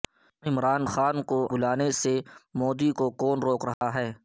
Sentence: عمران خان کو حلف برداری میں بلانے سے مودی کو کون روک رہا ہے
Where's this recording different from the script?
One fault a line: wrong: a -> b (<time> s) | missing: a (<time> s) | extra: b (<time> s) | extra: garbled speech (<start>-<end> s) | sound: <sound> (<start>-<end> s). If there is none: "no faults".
missing: حلف برداری میں (1.4 s)
sound: dropout (3.7-3.8 s)